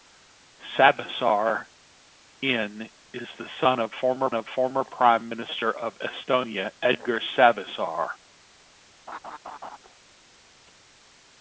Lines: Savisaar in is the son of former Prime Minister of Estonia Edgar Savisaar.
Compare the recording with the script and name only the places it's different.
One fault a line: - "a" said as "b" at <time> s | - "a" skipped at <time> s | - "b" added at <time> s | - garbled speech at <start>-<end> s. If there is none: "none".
- "of former" added at 4.3 s